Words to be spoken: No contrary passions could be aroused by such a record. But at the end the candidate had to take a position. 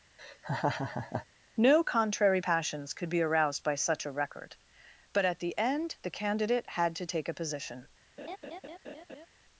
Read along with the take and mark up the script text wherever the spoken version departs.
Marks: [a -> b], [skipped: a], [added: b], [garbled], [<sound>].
[laugh] No contrary passions could be aroused by such a record. But at the end the candidate had to take a position. [laugh]